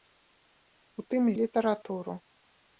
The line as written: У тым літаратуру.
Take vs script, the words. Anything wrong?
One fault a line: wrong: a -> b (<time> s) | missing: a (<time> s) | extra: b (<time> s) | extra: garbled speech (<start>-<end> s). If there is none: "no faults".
no faults